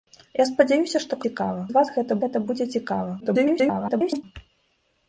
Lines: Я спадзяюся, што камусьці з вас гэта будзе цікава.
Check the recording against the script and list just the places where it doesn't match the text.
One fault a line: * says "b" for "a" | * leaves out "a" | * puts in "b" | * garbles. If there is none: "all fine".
* says "цікава" for "камусьці"
* puts in "гэта"
* garbles